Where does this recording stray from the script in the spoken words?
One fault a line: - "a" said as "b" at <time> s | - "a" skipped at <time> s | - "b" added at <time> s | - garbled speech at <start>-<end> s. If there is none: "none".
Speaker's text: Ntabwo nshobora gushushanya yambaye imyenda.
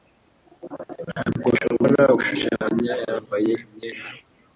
none